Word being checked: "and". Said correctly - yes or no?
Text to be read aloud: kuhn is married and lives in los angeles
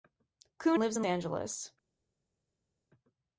no